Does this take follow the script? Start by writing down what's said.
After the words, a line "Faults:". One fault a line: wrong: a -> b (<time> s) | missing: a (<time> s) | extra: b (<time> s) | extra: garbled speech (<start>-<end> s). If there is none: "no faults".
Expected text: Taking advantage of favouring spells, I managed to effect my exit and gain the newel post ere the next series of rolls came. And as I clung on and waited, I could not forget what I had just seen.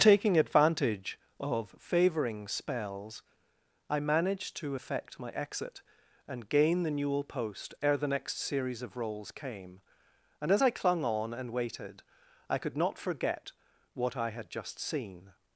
Taking advantage of favouring spells, I managed to effect my exit and gain the newel post ere the next series of rolls came. And as I clung on and waited, I could not forget what I had just seen.
Faults:
no faults